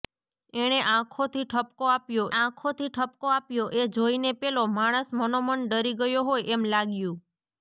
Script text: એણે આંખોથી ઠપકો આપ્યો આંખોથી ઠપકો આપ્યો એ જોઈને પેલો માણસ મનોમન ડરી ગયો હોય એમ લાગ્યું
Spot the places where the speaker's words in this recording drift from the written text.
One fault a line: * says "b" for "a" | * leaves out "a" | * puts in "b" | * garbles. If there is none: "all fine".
all fine